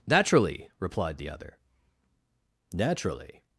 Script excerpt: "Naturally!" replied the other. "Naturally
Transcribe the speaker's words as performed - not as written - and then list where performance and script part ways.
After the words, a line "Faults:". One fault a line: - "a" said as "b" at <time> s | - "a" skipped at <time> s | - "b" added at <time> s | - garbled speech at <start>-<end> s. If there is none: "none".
"Naturally!" replied the other. "Naturally
Faults:
none